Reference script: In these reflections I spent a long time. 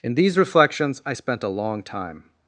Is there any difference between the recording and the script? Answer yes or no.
no